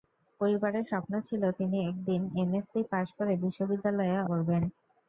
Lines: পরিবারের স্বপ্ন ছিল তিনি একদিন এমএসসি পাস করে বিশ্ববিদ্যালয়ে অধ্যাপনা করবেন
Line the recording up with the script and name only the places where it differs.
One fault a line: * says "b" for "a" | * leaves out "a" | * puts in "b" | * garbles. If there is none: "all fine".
* leaves out "অধ্যাপনা"